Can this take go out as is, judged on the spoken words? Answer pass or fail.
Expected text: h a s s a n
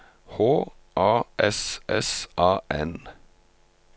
pass